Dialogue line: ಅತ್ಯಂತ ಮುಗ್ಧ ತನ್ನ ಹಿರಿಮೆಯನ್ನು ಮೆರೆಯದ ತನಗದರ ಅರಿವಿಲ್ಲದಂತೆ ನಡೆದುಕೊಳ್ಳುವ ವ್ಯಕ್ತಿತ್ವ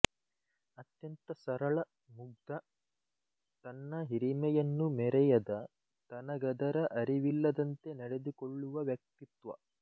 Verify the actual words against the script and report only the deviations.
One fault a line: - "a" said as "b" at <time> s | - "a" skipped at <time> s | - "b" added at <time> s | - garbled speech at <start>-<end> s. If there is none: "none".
- "ಸರಳ" added at 1.4 s